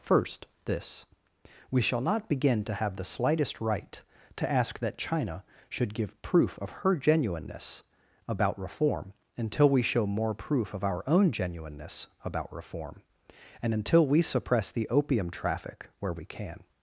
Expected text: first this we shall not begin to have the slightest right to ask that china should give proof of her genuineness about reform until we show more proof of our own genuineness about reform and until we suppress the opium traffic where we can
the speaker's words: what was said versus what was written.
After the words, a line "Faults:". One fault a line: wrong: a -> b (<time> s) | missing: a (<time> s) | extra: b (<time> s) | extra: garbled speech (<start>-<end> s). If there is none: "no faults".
first this we shall not begin to have the slightest right to ask that china should give proof of her genuineness about reform until we show more proof of our own genuineness about reform and until we suppress the opium traffic where we can
Faults:
no faults